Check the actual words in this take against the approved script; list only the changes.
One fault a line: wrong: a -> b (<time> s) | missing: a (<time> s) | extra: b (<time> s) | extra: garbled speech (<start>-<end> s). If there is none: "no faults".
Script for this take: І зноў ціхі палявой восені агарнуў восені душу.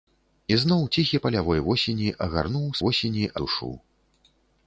no faults